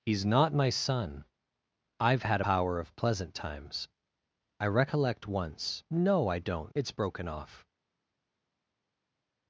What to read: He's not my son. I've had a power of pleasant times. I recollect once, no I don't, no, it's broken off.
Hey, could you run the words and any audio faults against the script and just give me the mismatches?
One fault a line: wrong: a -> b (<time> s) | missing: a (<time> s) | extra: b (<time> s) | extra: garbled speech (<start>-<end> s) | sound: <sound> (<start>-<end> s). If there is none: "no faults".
missing: a (2.4 s)
missing: no (6.7 s)